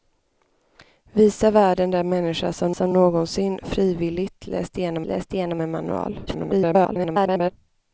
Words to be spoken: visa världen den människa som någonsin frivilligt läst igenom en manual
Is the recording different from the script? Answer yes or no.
yes